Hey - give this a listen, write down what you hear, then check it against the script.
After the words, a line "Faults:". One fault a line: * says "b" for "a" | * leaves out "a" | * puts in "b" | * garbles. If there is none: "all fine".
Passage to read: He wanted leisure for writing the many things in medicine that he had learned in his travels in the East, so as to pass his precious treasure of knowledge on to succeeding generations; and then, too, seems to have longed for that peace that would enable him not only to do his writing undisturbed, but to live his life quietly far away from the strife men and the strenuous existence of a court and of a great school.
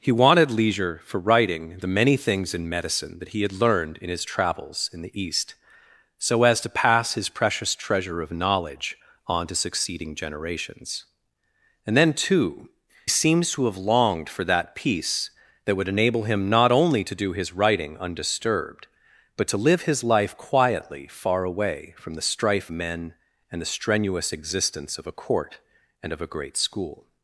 He wanted leisure for writing the many things in medicine that he had learned in his travels in the East, so as to pass his precious treasure of knowledge on to succeeding generations; and then, too, seems to have longed for that peace that would enable him not only to do his writing undisturbed, but to live his life quietly far away from the strife men and the strenuous existence of a court and of a great school.
Faults:
all fine